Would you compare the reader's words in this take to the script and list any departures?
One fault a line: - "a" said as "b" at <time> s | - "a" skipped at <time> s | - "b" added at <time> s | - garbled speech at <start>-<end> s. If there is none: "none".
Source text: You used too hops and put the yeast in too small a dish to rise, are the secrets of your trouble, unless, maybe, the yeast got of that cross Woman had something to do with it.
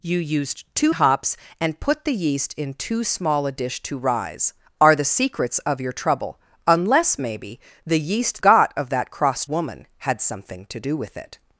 none